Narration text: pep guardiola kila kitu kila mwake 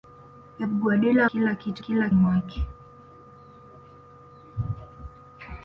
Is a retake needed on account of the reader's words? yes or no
no